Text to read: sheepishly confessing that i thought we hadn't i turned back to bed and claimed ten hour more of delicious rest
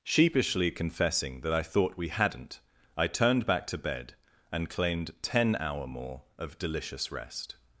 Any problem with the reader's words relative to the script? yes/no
no